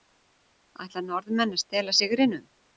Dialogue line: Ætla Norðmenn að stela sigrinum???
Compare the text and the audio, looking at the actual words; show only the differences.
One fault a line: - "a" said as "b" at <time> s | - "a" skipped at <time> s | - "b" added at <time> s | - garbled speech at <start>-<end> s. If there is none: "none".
none